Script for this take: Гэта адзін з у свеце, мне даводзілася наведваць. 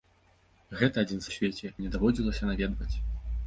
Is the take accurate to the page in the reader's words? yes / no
yes